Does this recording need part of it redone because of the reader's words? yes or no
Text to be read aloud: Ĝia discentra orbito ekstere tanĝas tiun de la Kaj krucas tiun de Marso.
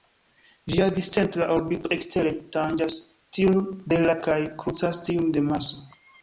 no